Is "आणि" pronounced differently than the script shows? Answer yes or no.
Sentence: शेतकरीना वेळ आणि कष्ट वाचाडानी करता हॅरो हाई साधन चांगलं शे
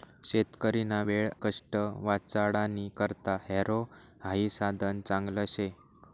yes